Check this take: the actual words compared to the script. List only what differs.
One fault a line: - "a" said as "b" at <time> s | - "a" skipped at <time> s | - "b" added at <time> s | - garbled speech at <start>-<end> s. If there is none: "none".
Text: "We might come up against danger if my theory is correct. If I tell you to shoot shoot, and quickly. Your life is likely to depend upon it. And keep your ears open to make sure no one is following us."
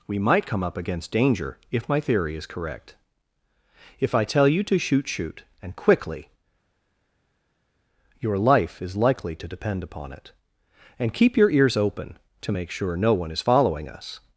none